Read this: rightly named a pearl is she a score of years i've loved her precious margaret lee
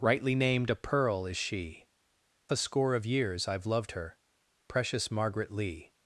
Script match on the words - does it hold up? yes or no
yes